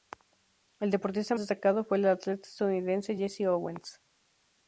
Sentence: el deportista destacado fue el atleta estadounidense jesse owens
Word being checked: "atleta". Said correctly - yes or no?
yes